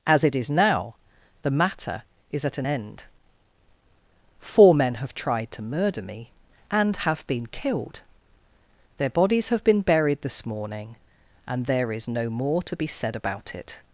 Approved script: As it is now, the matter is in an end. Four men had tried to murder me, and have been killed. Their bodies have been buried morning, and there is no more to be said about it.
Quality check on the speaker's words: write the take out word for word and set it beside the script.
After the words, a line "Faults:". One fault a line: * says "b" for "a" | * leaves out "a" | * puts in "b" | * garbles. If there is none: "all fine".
As it is now, the matter is at an end. Four men have tried to murder me, and have been killed. Their bodies have been buried this morning, and there is no more to be said about it.
Faults:
* says "at" for "in"
* says "have" for "had"
* puts in "this"